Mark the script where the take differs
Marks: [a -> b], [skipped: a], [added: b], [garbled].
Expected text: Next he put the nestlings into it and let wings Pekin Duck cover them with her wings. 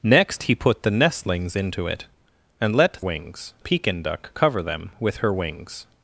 Next he put the nestlings into it and let wings Pekin Duck cover them with her wings.